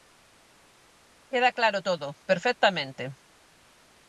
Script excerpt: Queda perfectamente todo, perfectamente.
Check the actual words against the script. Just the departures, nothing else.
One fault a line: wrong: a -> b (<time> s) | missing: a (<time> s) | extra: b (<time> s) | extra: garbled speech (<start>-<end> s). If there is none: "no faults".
wrong: perfectamente -> claro (1.6 s)